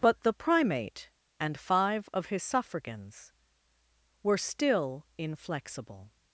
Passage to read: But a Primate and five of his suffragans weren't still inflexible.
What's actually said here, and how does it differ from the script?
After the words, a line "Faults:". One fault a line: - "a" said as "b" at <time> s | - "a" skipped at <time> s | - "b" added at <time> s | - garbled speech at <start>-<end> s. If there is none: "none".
But the Primate and five of his suffragans were still inflexible.
Faults:
- "a" said as "the" at 0.2 s
- "weren't" said as "were" at 4.2 s